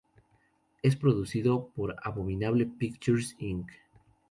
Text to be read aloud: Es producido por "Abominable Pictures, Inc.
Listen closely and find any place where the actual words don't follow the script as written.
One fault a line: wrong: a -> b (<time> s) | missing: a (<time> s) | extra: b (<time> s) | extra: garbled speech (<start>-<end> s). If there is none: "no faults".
no faults